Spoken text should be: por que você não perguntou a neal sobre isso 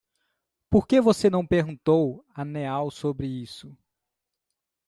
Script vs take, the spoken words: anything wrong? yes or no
no